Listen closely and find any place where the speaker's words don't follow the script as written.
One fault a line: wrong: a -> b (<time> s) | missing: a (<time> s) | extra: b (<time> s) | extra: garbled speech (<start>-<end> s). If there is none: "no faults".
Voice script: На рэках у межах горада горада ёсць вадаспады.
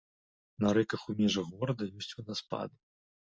missing: горада (1.8 s)